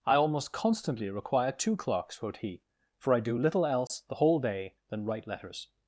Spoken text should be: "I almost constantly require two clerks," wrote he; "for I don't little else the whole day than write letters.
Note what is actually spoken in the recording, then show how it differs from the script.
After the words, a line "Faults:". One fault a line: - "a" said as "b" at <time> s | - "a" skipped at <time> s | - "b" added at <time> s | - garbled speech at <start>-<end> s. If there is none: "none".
"I almost constantly require two clerks," wrote he; "for I do little else the whole day than write letters.
Faults:
- "don't" said as "do" at 3.2 s